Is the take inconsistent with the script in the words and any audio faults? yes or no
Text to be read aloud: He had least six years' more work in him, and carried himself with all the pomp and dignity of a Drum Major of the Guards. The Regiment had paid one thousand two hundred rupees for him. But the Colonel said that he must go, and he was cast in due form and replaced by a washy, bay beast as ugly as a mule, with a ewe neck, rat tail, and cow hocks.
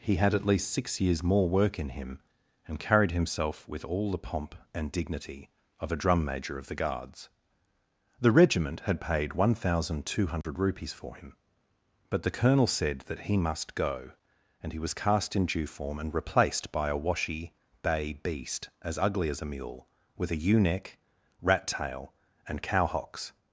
yes